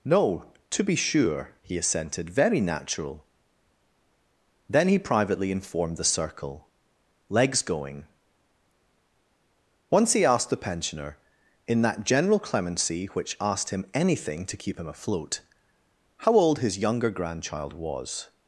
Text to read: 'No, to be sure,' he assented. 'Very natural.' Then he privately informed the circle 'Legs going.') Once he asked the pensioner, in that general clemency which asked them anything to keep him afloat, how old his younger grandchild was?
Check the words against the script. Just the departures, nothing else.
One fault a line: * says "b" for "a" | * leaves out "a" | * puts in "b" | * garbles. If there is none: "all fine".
* says "him" for "them"